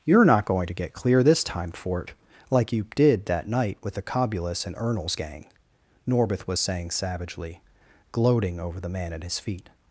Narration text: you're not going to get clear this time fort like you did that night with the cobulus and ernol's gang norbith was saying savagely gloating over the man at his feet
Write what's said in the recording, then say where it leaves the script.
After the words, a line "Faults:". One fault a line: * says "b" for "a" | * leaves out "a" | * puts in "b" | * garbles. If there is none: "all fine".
you're not going to get clear this time fort like you did that night with the cobulus and ernol's gang norbith was saying savagely gloating over the man at his feet
Faults:
all fine